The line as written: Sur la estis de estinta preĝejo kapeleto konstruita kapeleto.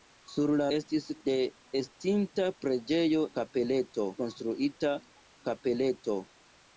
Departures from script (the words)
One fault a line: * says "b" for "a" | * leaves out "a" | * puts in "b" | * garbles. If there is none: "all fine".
all fine